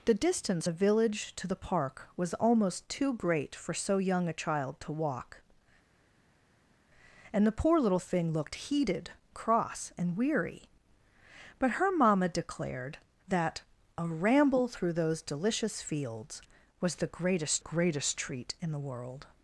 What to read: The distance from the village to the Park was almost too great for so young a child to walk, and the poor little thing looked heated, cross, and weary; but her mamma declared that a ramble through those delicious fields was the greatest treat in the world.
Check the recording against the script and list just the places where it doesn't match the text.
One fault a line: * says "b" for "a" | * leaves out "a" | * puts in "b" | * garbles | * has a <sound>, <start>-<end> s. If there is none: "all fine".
* leaves out "from"
* puts in "greatest"